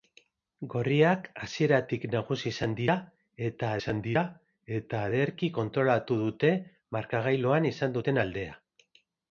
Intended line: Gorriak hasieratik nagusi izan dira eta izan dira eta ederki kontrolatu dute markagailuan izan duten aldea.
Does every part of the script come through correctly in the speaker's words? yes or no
yes